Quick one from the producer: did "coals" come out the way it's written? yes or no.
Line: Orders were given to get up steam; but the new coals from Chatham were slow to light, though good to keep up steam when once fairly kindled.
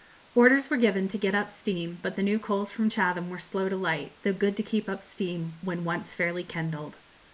yes